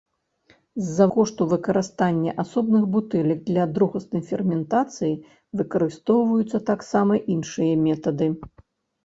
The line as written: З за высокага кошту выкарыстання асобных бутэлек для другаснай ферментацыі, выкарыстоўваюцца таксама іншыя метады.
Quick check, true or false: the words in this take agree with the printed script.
false